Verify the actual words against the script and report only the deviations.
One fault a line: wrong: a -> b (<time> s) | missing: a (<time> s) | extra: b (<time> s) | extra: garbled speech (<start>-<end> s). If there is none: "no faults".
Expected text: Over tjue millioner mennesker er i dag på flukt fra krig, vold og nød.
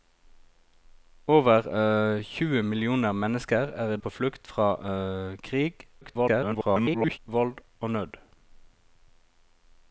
missing: dag (4.0 s)
extra: garbled speech (6.0-7.2 s)